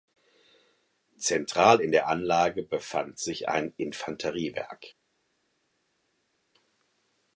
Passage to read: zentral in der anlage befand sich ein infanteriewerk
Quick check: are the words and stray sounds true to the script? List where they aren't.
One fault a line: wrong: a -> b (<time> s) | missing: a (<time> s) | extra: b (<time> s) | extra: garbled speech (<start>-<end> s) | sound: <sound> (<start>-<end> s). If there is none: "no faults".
no faults